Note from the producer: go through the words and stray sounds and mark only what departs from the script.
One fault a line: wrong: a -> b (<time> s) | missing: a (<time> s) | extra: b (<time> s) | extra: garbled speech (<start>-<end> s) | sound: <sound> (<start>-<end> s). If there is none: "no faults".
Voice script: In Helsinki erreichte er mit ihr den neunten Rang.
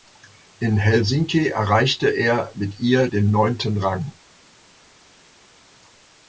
no faults